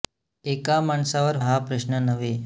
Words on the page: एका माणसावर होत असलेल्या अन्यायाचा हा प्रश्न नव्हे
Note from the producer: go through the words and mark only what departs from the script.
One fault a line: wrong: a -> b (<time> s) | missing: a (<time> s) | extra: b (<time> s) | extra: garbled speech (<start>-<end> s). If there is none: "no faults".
missing: होत असलेल्या अन्यायाचा (1.4 s)